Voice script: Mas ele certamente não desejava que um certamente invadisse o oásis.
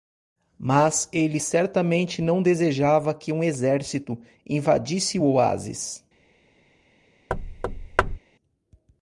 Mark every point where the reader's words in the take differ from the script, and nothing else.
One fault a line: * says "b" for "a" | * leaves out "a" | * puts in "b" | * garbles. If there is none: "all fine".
* says "exército" for "certamente"